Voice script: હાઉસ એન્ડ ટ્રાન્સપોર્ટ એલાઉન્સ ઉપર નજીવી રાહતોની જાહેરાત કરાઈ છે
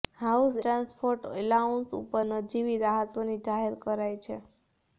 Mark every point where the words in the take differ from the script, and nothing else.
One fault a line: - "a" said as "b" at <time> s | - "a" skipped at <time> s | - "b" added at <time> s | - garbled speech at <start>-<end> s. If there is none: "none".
- "એન્ડ" skipped at 0.6 s